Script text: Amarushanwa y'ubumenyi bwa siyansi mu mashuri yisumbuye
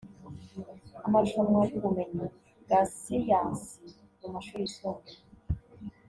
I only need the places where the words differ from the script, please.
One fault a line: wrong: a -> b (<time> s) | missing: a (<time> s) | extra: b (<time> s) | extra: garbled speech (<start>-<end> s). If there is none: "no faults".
no faults